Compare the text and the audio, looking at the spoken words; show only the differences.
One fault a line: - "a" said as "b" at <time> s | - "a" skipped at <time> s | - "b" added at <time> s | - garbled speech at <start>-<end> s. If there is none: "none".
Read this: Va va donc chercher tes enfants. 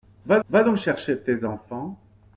none